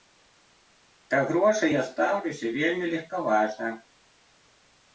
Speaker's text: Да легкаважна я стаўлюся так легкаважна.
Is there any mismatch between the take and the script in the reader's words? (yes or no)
yes